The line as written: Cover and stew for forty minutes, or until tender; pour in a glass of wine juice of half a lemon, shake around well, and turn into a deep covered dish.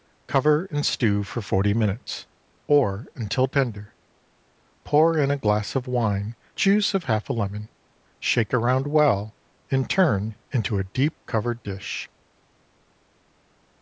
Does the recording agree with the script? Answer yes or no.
yes